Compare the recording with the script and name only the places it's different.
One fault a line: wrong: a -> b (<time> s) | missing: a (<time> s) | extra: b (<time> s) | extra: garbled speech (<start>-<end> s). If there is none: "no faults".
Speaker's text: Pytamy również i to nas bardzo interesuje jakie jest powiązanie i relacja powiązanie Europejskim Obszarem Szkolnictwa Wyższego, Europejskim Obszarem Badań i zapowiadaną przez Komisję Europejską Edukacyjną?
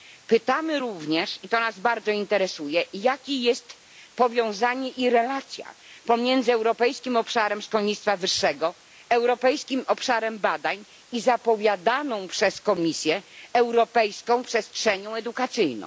wrong: powiązanie -> pomiędzy (6.0 s)
extra: Przestrzenią (14.4 s)